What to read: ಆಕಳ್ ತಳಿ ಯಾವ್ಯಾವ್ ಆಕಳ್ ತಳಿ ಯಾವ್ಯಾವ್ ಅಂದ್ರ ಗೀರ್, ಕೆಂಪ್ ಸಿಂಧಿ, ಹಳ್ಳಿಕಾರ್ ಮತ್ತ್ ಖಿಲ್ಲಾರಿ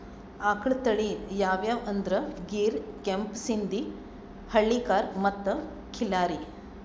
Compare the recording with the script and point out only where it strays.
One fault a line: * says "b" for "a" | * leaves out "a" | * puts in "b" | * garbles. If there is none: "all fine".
* leaves out "ಆಕಳ್ ತಳಿ ಯಾವ್ಯಾವ್"